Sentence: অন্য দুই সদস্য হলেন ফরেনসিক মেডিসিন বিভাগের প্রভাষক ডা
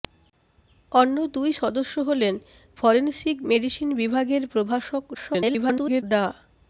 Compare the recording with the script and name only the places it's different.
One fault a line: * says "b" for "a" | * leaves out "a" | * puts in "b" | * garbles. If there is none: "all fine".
* garbles